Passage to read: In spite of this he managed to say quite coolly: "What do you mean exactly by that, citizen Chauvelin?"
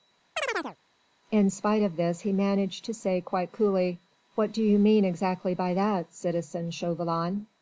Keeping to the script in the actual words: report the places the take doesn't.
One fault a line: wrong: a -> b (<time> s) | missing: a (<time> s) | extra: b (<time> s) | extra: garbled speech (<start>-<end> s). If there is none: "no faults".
no faults